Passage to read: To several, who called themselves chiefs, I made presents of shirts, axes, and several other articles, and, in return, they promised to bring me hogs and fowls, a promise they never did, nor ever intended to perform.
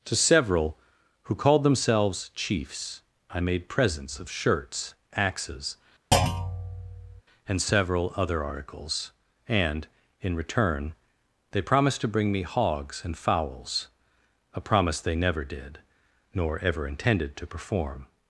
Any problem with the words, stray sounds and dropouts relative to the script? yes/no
yes